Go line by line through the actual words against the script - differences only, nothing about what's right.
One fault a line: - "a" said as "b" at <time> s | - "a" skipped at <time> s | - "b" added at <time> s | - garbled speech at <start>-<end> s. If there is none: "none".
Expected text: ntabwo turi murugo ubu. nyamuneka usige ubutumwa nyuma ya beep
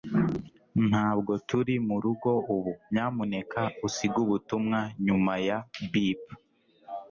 none